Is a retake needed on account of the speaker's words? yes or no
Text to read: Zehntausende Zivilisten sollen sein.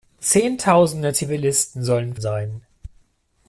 no